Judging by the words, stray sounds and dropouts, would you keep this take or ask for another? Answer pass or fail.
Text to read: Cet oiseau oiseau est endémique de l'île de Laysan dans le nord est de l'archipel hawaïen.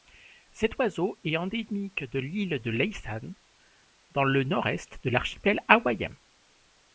fail